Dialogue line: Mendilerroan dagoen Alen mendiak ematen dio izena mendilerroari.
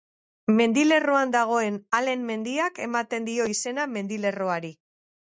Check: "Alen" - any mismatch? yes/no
no